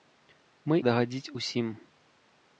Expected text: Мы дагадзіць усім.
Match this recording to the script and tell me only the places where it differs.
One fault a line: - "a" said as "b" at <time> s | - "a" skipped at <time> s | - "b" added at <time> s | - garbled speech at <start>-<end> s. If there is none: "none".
none